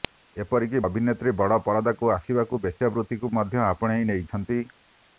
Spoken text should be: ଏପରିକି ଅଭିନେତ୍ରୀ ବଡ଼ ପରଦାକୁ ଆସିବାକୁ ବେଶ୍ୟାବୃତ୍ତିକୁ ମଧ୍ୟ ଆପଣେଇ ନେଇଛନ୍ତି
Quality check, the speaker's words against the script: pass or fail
pass